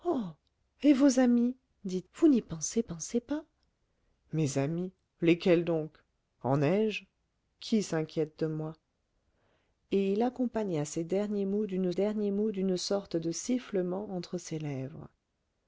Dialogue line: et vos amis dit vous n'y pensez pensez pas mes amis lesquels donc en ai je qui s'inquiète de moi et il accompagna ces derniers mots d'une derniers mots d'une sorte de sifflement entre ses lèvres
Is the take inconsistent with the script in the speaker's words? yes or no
no